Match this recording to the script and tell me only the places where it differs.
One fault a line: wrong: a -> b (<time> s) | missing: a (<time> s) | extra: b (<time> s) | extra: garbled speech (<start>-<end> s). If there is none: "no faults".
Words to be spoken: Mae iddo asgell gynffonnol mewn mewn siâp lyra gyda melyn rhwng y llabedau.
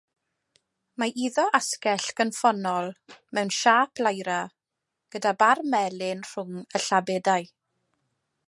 missing: mewn (3.5 s)
extra: bar (5.4 s)